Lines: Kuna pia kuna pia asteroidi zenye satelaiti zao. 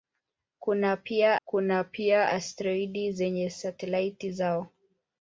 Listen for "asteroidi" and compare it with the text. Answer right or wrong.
right